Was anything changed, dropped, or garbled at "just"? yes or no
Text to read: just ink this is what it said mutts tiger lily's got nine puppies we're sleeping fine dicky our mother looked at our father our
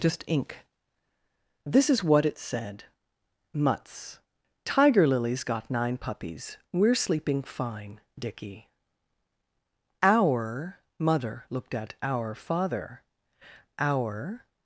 no